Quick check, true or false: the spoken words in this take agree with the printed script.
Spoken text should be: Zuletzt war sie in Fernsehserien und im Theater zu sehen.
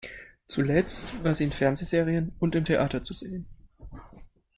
true